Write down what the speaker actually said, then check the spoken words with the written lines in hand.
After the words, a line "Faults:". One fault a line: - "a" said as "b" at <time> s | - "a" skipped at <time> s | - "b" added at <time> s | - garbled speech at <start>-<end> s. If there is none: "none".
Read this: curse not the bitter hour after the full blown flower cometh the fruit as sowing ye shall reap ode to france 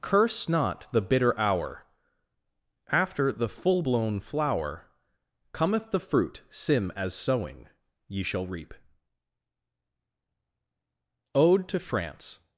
curse not the bitter hour after the full blown flower cometh the fruit sim as sowing ye shall reap ode to france
Faults:
- "sim" added at 6.5 s